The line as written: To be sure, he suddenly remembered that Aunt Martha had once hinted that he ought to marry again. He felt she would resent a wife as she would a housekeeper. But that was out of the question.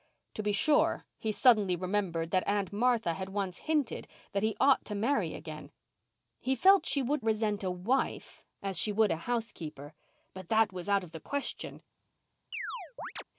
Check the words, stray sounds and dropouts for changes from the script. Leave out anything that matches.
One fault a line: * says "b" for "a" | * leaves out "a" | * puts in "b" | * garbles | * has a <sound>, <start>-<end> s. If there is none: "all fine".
* has a chirp, 12.5-13.2 s